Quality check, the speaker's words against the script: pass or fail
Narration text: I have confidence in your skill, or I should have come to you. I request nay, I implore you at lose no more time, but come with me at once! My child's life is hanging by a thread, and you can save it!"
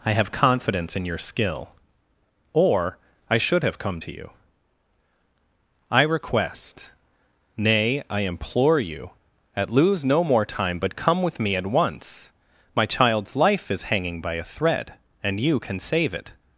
pass